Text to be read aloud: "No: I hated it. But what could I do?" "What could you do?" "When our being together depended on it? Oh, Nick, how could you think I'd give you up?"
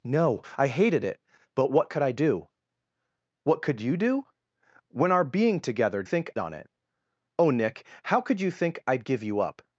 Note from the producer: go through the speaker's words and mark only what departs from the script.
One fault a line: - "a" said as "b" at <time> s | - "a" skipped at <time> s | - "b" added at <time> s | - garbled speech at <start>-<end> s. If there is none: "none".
- "depended" said as "think" at 6.0 s